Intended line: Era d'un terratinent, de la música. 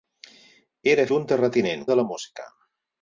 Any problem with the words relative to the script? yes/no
no